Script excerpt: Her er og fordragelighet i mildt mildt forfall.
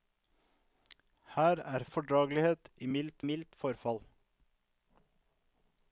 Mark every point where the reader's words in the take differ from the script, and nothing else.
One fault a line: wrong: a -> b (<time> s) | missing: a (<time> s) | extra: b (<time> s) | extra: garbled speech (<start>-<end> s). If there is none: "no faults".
no faults